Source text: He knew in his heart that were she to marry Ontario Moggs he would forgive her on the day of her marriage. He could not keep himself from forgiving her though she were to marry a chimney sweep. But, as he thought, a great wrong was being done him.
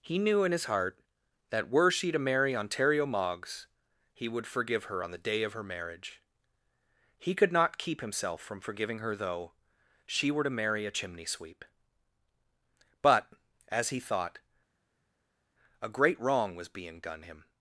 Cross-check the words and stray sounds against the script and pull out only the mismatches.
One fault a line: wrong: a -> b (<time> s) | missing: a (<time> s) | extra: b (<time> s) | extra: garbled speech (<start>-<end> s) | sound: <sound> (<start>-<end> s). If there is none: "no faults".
no faults